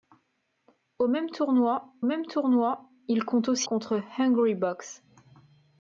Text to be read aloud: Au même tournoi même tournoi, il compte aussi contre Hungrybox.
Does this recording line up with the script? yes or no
yes